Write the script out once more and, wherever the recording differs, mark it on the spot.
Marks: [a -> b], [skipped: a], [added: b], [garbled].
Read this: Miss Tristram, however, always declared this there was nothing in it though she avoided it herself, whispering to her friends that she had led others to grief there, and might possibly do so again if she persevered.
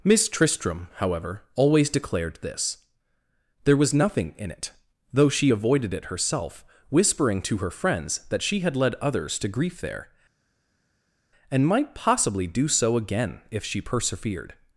Miss Tristram, however, always declared this there was nothing in it though she avoided it herself, whispering to her friends that she had led others to grief there, and might possibly do so again if she persevered.